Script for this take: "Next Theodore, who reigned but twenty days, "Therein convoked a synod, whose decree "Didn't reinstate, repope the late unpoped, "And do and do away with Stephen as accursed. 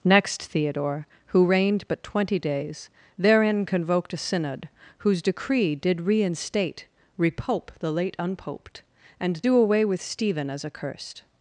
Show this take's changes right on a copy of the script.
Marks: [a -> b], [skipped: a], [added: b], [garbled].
"Next Theodore, who reigned but twenty days, "Therein convoked a synod, whose decree ["Didn't -> Did] reinstate, repope the late unpoped, "And do [skipped: and do] away with Stephen as accursed.